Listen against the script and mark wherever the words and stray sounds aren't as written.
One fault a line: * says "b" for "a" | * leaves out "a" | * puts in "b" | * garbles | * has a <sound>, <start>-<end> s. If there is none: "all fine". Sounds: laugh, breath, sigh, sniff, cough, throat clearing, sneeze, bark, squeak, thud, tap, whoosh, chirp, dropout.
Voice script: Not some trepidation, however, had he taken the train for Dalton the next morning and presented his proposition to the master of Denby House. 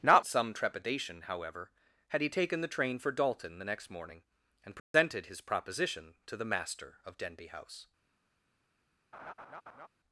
* has a dropout, 4.8-4.9 s
* has a laugh, 9.1-9.9 s